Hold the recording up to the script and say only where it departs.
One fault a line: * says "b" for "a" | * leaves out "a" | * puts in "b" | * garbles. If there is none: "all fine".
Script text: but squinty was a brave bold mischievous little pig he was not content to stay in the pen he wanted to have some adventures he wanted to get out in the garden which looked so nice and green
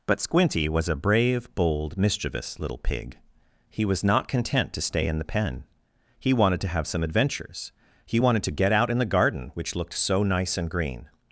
all fine